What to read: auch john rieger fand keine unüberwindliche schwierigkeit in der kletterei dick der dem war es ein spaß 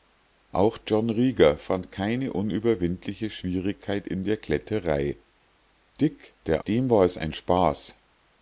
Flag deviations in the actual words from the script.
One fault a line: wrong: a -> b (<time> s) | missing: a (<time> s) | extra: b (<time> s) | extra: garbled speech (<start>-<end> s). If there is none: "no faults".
no faults